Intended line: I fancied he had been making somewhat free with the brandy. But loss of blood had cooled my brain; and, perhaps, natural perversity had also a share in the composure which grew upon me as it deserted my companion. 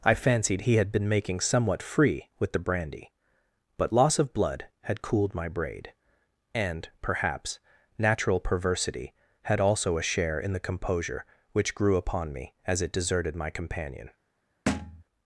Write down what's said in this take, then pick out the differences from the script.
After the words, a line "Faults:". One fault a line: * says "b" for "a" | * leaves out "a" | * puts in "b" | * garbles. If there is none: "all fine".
I fancied he had been making somewhat free with the brandy. But loss of blood had cooled my braid; and, perhaps, natural perversity had also a share in the composure which grew upon me as it deserted my companion.
Faults:
* says "braid" for "brain"